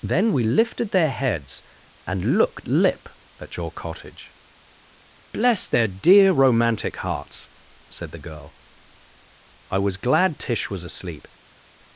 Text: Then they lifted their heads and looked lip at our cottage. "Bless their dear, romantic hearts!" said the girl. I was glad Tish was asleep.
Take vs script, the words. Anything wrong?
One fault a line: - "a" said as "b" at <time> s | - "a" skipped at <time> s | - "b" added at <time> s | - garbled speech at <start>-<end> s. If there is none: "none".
- "they" said as "we" at 0.3 s
- "our" said as "your" at 3.6 s